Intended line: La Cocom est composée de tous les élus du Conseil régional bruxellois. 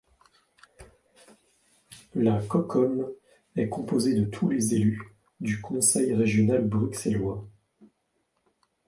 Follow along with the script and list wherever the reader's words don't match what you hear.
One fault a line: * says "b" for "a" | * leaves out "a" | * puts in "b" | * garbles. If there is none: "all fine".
all fine